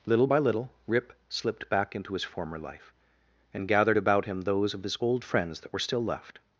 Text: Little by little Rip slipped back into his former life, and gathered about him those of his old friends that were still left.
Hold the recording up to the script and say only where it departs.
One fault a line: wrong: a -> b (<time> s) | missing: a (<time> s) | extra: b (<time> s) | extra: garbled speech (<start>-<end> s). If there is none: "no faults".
no faults